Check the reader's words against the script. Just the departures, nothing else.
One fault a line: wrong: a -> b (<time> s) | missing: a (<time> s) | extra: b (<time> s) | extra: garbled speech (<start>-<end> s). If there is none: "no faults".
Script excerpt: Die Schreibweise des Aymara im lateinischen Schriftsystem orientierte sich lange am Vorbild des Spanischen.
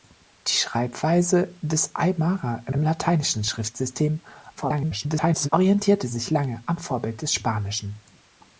extra: im (2.7 s)
extra: garbled speech (4.6-5.5 s)